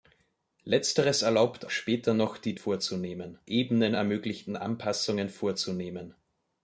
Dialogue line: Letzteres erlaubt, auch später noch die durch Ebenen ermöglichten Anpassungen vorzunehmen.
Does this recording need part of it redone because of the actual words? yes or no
yes